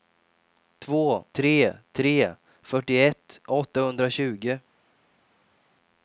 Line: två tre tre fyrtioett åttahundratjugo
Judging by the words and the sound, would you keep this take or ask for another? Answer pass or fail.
pass